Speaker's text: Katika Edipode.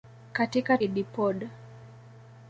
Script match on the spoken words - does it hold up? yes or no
yes